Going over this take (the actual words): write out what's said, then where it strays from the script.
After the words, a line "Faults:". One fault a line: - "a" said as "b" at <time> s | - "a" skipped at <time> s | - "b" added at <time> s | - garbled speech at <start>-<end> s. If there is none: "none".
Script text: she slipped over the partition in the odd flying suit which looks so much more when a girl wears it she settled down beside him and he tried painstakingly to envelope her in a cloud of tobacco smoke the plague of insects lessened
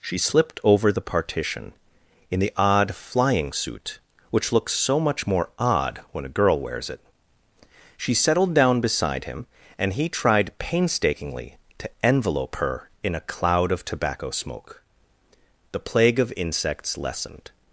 she slipped over the partition in the odd flying suit which looks so much more odd when a girl wears it she settled down beside him and he tried painstakingly to envelope her in a cloud of tobacco smoke the plague of insects lessened
Faults:
- "odd" added at 5.6 s